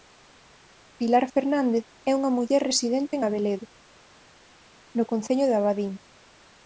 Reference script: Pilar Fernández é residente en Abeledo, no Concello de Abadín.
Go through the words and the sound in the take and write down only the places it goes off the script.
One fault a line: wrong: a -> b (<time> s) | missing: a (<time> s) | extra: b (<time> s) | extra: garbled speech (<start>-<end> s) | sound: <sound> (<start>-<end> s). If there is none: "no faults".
extra: unha muller (2.2 s)